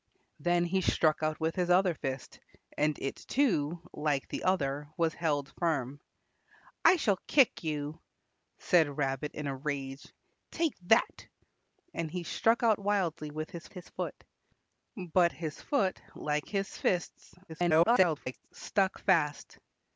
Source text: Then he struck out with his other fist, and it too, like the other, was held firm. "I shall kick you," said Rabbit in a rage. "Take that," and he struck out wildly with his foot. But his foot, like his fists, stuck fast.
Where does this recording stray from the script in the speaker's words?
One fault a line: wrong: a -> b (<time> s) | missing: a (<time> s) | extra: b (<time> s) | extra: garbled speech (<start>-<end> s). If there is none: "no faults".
extra: his (13.7 s)
extra: garbled speech (17.5-18.5 s)